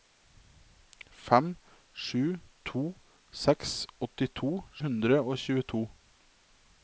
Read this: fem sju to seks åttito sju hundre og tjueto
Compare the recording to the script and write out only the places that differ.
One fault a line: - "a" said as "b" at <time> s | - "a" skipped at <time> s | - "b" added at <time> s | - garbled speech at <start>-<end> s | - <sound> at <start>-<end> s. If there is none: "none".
- "sju" skipped at 4.5 s